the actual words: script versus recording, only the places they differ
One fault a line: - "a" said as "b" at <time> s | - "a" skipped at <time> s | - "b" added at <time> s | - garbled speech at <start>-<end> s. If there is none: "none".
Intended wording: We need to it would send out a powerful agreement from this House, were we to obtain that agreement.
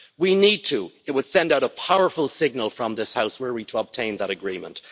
- "agreement" said as "signal" at 2.3 s